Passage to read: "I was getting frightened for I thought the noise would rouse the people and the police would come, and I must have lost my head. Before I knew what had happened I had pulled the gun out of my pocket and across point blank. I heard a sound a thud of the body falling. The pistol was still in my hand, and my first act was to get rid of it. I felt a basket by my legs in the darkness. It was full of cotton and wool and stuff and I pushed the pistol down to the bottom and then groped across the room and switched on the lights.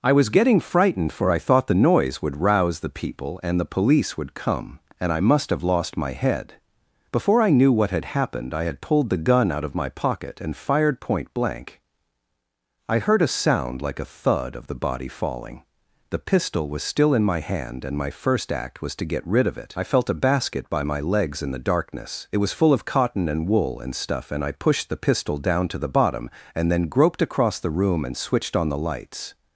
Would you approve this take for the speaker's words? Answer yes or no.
no